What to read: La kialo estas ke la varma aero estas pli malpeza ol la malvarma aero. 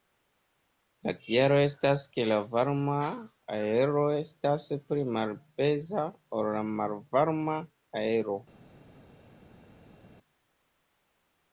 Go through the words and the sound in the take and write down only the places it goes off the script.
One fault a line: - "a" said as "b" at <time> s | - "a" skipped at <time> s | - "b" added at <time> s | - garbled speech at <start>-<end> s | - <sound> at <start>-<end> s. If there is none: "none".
none